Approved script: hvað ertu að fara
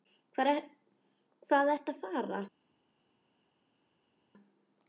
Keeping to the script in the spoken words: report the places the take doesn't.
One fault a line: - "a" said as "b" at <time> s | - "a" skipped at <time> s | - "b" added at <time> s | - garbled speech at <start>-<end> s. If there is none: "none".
none